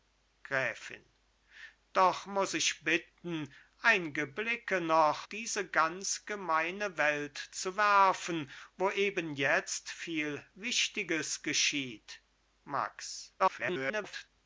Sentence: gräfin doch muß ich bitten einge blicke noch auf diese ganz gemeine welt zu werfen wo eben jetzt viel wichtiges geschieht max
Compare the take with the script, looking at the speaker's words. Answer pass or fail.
fail